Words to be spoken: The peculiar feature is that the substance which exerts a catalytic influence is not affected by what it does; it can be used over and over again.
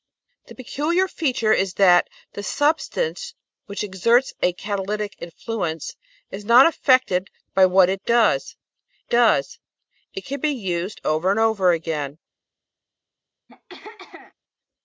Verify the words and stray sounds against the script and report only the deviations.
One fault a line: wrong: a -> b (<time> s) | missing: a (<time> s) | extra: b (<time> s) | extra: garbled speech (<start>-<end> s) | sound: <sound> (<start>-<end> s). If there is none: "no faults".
extra: does (9.1 s)
sound: throat clearing (13.5-14.3 s)